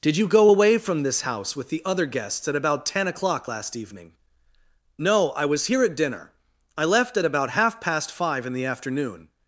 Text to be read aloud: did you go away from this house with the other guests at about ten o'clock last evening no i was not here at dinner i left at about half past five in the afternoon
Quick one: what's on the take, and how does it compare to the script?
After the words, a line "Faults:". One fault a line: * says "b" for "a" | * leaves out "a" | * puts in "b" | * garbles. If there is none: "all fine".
did you go away from this house with the other guests at about ten o'clock last evening no i was here at dinner i left at about half past five in the afternoon
Faults:
* leaves out "not"